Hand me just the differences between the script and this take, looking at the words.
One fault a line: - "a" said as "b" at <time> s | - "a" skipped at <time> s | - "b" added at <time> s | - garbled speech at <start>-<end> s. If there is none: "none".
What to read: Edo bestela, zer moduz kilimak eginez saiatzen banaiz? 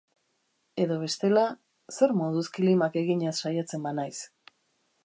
none